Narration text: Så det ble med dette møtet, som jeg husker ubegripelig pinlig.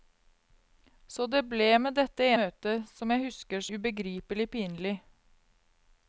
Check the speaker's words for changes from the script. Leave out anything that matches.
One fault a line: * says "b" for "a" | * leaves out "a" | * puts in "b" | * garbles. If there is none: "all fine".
all fine